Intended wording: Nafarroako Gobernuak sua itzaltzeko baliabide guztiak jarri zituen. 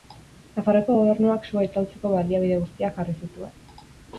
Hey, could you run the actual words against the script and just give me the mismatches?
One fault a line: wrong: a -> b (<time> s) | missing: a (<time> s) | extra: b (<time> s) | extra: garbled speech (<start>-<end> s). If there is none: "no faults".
no faults